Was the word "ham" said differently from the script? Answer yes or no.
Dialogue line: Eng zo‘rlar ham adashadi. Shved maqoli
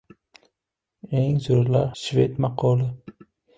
yes